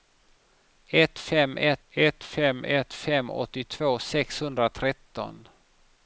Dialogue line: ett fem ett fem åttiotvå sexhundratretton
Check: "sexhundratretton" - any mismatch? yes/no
no